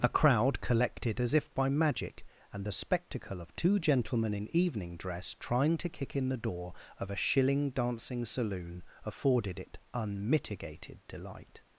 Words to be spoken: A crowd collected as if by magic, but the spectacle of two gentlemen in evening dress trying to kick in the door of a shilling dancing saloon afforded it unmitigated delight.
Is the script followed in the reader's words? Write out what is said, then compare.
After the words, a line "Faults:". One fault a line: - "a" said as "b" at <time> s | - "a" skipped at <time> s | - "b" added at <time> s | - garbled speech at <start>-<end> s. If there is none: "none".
A crowd collected as if by magic, and the spectacle of two gentlemen in evening dress trying to kick in the door of a shilling dancing saloon afforded it unmitigated delight.
Faults:
- "but" said as "and" at 2.5 s